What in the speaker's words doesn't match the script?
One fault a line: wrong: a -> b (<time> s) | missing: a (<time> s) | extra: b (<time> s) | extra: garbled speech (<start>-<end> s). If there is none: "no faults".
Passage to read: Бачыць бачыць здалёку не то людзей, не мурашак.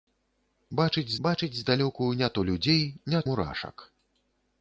no faults